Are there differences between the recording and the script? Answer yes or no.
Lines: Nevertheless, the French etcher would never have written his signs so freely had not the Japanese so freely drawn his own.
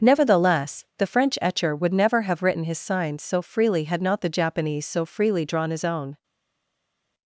no